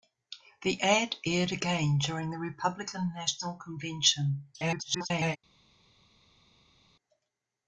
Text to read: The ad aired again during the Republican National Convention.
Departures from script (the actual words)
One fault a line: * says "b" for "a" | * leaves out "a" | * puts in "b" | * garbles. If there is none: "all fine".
* garbles